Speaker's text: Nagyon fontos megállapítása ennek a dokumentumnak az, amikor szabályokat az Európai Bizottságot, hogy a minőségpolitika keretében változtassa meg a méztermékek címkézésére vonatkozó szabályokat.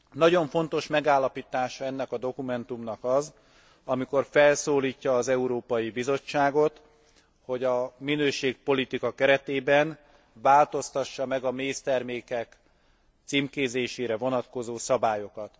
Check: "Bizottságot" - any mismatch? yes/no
no